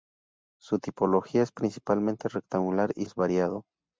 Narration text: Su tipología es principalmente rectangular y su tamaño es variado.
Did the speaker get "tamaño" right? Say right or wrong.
wrong